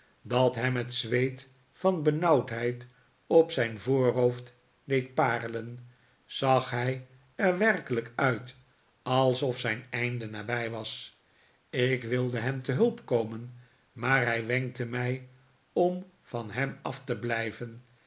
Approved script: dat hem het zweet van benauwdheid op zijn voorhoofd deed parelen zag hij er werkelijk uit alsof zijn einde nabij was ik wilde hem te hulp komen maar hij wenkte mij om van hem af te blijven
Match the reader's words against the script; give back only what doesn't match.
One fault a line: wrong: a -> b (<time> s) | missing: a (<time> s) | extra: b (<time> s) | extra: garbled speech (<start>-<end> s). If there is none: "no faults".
no faults